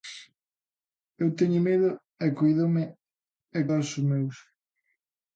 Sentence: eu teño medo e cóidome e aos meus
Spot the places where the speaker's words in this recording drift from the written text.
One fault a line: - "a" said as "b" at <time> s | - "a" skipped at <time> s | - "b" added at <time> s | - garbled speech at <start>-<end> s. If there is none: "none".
none